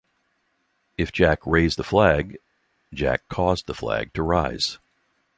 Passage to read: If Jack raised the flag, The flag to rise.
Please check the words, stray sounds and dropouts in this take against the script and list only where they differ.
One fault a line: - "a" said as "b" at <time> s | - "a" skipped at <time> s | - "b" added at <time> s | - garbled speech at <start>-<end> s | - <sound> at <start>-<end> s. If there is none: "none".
- "Jack caused" added at 2.9 s